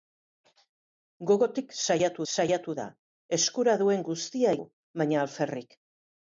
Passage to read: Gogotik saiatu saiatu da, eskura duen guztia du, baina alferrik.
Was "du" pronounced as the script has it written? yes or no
yes